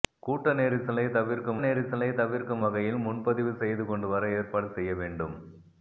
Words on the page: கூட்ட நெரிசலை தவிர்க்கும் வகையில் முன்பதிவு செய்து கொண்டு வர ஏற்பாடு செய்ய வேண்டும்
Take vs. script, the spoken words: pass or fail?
fail